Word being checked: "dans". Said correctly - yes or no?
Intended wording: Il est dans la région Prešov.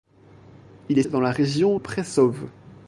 yes